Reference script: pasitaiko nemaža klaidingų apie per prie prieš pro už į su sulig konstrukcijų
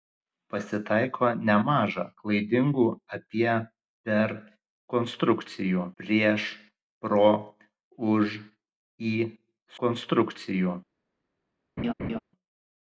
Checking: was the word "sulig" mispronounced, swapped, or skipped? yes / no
yes